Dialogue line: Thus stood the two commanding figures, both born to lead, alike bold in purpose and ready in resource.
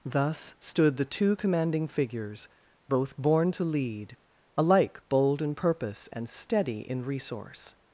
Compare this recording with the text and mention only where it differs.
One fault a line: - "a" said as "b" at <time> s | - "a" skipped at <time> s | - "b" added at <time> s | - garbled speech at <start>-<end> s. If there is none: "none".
- "ready" said as "steady" at 6.3 s